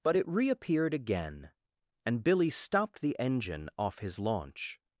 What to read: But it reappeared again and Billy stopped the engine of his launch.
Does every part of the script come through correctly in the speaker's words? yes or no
no